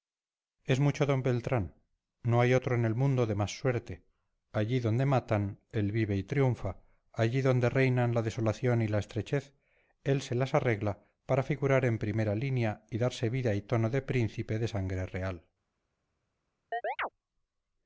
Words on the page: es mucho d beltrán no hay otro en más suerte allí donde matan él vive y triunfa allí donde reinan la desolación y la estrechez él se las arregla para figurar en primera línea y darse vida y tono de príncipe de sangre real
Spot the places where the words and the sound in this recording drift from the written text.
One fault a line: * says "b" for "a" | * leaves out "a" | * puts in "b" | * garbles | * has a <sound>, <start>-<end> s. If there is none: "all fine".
* puts in "el mundo de"
* has a chirp, 16.7-17.1 s